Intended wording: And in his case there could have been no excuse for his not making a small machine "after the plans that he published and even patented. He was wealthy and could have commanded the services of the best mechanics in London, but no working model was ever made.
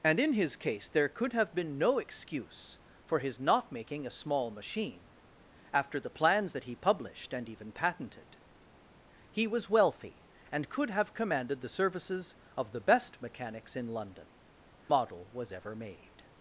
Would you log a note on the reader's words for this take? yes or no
yes